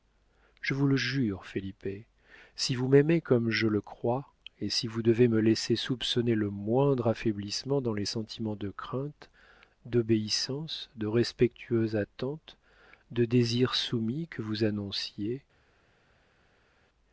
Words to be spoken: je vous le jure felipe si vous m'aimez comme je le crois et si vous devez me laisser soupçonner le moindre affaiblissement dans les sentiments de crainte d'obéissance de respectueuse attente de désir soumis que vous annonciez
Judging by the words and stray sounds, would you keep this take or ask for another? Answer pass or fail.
pass